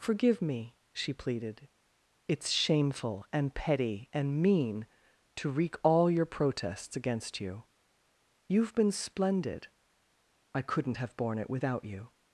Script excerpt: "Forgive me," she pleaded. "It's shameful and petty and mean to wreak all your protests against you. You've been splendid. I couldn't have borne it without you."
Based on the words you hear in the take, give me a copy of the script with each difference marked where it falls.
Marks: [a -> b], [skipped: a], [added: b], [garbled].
"Forgive me," she pleaded. "It's shameful and petty and mean to wreak all your protests against you. You've been splendid. I couldn't have borne it without you."